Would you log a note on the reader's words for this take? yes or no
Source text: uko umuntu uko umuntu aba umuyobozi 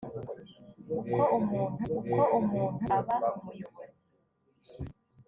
no